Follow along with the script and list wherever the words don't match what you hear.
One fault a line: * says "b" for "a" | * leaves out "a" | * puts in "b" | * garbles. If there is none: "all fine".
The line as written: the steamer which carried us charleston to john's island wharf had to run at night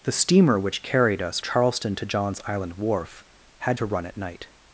all fine